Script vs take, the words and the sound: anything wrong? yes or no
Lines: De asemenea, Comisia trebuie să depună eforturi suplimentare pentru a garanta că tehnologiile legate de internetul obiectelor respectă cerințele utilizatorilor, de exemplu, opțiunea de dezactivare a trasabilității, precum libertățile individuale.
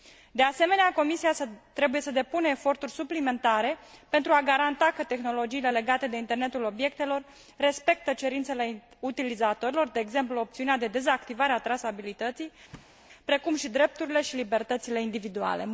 yes